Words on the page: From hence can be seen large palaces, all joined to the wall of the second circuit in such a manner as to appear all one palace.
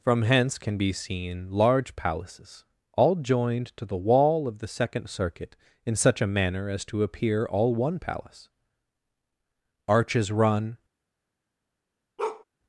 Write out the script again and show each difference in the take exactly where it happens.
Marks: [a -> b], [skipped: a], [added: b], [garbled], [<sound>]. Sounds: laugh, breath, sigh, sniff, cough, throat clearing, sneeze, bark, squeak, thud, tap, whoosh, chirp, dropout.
From hence can be seen large palaces, all joined to the wall of the second circuit in such a manner as to appear all one palace. [added: Arches run] [bark]